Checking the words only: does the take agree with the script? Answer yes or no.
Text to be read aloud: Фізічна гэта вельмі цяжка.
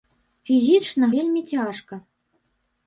no